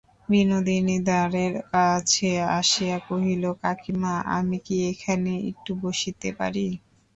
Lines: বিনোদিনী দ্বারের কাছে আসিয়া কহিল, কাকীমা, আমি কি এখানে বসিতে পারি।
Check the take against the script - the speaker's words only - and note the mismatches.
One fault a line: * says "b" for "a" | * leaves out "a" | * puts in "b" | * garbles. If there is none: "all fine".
* puts in "একটু"